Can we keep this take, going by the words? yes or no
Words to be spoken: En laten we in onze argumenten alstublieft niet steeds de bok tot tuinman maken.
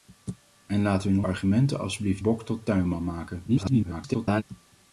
no